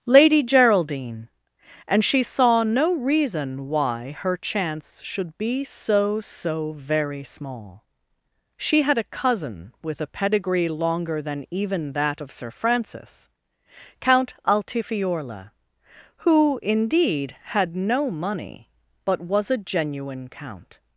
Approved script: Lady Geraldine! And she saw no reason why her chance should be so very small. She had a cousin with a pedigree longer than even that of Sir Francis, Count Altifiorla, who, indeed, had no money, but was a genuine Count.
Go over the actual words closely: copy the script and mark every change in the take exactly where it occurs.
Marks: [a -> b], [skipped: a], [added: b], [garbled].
Lady Geraldine! And she saw no reason why her chance should be so [added: so] very small. She had a cousin with a pedigree longer than even that of Sir Francis, Count Altifiorla, who, indeed, had no money, but was a genuine Count.